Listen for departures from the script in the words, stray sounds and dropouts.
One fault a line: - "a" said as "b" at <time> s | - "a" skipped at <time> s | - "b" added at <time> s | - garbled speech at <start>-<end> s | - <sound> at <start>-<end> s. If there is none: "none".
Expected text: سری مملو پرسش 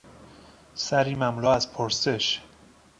- "از" added at 1.5 s